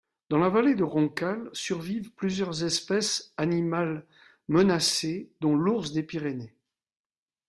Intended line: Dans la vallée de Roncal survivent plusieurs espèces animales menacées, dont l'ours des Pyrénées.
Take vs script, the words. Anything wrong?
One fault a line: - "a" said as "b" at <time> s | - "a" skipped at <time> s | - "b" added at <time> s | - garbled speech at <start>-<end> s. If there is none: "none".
none